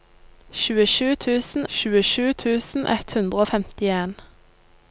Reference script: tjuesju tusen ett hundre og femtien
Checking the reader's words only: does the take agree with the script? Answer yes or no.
no